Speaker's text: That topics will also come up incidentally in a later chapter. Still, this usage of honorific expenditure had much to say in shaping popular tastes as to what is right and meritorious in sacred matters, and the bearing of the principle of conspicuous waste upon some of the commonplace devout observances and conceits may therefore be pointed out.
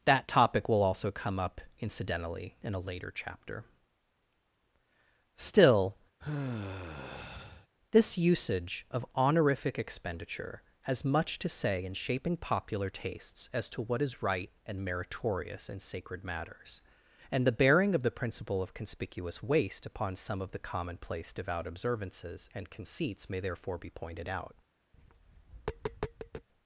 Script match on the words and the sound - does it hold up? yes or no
no